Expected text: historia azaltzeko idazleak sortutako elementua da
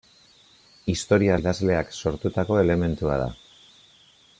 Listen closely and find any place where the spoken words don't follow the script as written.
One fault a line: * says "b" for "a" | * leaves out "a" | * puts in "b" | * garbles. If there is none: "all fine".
* leaves out "azaltzeko"